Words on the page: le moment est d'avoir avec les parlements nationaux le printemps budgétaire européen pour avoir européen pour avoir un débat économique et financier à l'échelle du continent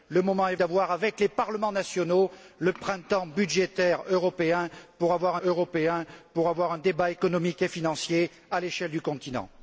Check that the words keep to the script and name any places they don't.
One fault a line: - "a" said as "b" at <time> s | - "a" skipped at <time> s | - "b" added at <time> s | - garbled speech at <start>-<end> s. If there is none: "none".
none